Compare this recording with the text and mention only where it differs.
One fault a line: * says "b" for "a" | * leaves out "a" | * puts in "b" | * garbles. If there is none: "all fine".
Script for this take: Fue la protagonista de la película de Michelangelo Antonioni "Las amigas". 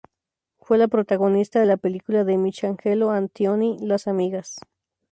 all fine